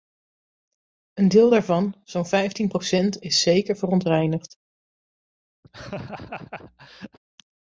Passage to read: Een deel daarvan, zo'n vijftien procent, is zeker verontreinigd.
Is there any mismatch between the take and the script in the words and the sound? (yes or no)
yes